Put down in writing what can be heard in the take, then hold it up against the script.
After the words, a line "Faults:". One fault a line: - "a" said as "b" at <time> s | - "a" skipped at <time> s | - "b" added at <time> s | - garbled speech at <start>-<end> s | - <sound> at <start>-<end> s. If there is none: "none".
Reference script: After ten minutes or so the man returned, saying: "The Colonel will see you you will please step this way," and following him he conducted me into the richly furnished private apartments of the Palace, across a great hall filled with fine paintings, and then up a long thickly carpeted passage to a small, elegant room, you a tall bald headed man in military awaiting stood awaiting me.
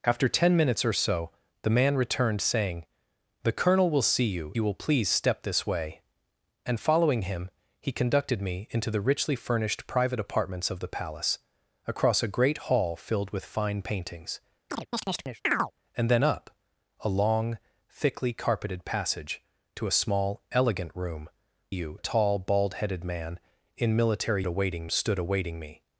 After ten minutes or so the man returned, saying: "The Colonel will see you you will please step this way," and following him he conducted me into the richly furnished private apartments of the Palace, across a great hall filled with fine paintings, and then up a long thickly carpeted passage to a small, elegant room, you a tall bald headed man in military awaiting stood awaiting me.
Faults:
- chirp at 14.7-15.7 s